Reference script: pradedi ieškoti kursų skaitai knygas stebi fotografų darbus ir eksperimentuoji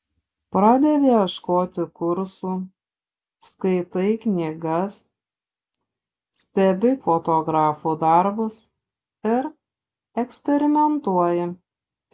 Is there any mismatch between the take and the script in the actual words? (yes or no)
no